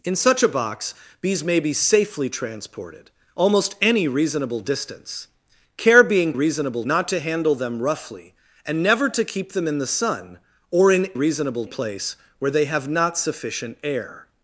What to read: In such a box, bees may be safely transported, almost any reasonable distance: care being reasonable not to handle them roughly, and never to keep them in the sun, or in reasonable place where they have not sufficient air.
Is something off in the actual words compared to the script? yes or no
no